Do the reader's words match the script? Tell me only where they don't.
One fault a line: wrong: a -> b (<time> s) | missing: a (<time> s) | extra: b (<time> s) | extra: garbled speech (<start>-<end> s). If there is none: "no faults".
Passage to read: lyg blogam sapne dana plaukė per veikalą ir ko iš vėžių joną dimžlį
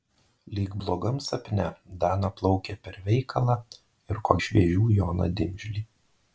no faults